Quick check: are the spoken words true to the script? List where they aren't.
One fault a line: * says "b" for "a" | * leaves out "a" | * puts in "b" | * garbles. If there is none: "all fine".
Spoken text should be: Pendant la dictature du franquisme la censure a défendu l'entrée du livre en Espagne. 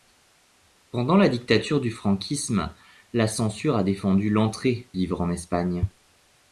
* leaves out "du"